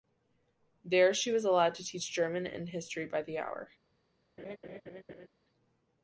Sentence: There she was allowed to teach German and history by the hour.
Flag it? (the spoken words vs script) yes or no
no